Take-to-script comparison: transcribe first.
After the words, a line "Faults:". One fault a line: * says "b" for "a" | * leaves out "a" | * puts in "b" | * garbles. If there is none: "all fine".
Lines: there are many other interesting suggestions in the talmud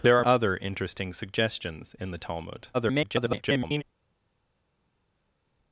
there are other interesting suggestions in the talmud [garbled]
Faults:
* leaves out "many"
* garbles